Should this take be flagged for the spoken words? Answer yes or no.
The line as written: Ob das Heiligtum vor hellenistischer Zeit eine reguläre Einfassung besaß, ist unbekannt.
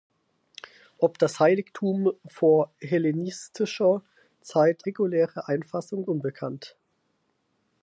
yes